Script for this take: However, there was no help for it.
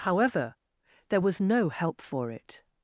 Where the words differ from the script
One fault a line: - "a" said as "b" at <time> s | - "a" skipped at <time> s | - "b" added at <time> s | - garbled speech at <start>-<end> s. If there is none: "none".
none